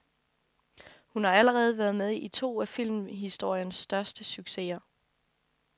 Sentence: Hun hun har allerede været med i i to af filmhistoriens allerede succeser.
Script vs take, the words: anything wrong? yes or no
yes